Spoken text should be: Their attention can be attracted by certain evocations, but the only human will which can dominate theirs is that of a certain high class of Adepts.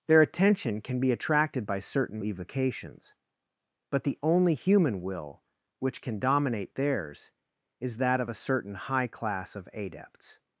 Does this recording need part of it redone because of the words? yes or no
no